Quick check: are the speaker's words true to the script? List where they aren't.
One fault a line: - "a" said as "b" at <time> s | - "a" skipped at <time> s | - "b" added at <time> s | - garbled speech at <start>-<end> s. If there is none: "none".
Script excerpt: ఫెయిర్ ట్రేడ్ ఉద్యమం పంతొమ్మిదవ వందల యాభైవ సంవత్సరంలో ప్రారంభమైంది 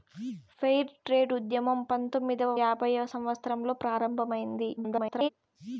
- "వందల" skipped at 2.5 s
- garbled speech at 4.8-5.3 s